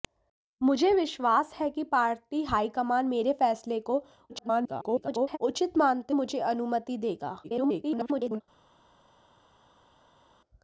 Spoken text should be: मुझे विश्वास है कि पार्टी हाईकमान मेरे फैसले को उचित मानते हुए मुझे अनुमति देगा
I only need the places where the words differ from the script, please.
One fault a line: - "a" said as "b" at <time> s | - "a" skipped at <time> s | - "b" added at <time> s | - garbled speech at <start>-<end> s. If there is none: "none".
- garbled speech at 4.3-5.4 s
- "हुए" skipped at 6.1 s
- garbled speech at 7.4-8.4 s